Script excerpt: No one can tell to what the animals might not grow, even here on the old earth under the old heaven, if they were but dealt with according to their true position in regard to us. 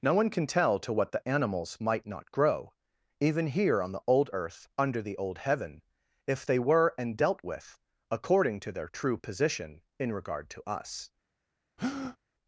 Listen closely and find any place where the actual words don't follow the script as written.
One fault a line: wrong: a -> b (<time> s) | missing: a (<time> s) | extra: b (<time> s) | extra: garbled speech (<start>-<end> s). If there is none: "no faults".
wrong: but -> and (7.0 s)